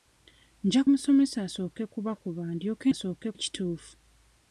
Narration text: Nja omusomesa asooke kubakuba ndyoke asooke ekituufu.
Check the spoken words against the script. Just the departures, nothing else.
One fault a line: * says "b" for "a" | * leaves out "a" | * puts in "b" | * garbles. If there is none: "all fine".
all fine